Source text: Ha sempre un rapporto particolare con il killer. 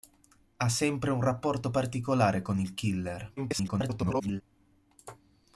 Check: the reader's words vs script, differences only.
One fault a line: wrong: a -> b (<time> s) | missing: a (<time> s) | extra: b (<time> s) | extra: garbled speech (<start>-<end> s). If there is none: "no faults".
extra: garbled speech (3.4-4.4 s)